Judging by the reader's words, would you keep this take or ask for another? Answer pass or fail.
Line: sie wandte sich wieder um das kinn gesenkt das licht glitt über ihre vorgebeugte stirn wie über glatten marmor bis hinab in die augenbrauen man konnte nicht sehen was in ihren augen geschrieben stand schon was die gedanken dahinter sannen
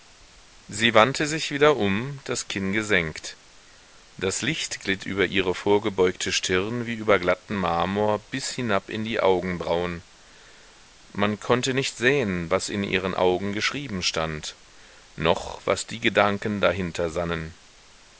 fail